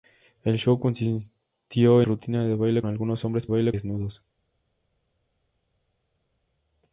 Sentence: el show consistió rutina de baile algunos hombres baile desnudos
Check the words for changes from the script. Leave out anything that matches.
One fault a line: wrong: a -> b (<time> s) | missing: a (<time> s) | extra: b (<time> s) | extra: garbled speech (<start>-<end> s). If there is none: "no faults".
no faults